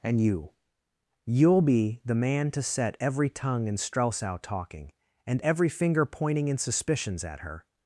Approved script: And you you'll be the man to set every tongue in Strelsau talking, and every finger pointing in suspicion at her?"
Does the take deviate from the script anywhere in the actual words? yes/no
yes